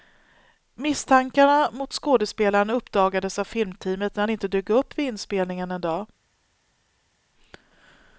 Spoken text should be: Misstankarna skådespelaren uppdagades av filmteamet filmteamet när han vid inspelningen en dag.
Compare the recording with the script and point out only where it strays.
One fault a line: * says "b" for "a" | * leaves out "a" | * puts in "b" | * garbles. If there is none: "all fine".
* puts in "mot"
* leaves out "filmteamet"
* puts in "inte dök upp"